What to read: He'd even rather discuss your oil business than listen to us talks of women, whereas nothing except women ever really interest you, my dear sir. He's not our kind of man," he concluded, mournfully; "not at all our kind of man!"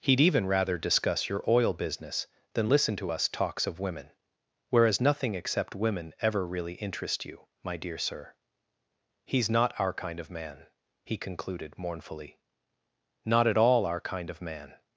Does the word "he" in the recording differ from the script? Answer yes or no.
no